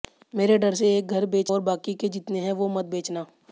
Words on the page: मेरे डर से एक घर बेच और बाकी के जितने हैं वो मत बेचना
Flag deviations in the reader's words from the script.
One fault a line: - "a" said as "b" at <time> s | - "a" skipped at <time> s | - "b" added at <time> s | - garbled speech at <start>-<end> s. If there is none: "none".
none